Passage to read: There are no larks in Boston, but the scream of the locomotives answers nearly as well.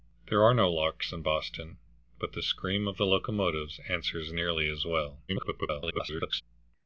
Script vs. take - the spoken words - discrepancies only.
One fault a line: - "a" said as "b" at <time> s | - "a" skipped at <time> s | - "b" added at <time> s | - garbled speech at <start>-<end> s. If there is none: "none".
- garbled speech at 5.3-6.4 s